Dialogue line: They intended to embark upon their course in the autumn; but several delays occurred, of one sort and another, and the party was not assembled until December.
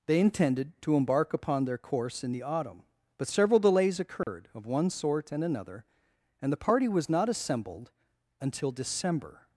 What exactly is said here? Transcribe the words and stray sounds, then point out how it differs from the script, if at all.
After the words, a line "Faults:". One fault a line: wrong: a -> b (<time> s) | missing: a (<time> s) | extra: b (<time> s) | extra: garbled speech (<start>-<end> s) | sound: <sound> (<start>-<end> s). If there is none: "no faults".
They intended to embark upon their course in the autumn; but several delays occurred, of one sort and another, and the party was not assembled until December.
Faults:
sound: dropout (4.2-4.3 s)